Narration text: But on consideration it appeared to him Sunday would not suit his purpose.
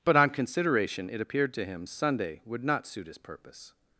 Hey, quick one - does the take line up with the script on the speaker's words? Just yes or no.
yes